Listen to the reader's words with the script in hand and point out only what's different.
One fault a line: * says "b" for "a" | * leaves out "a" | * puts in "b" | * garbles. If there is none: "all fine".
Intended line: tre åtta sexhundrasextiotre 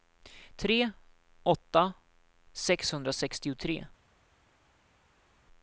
all fine